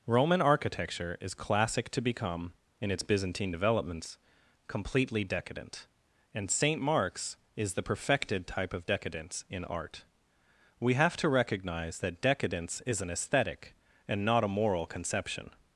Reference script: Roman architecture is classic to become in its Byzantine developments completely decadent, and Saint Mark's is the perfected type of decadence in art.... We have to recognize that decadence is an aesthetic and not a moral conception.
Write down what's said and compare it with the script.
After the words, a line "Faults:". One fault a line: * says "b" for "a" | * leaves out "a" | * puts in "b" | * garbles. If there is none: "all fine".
Roman architecture is classic to become in its Byzantine developments completely decadent, and Saint Mark's is the perfected type of decadence in art.... We have to recognize that decadence is an aesthetic and not a moral conception.
Faults:
all fine